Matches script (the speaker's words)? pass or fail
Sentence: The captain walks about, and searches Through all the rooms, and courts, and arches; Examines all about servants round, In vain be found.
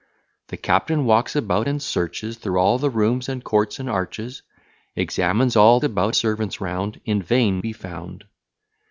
pass